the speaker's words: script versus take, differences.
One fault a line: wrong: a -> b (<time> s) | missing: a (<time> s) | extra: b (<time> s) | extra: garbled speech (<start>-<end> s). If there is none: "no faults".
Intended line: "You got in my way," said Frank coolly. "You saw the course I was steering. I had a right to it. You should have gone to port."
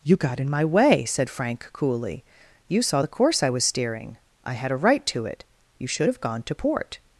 no faults